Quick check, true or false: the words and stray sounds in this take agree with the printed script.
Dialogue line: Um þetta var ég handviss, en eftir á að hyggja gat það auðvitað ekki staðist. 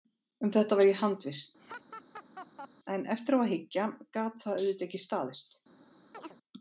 false